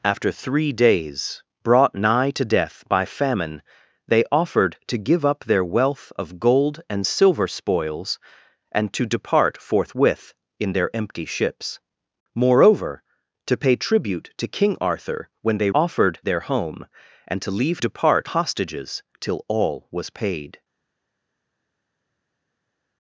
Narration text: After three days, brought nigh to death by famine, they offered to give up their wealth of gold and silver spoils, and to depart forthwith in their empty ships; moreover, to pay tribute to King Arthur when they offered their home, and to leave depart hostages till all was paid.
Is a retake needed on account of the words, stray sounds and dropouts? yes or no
no